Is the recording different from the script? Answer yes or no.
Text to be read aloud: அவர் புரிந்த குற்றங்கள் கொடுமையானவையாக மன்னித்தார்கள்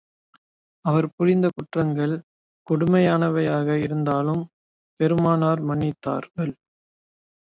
yes